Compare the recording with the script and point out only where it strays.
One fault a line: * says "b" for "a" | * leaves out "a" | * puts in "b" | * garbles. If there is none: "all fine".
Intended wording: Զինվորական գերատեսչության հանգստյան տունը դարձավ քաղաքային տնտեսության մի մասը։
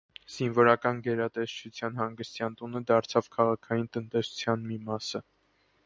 all fine